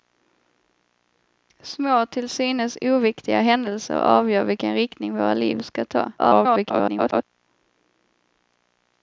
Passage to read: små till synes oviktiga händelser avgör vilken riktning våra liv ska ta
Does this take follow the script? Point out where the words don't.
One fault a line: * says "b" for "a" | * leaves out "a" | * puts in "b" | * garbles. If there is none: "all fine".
* garbles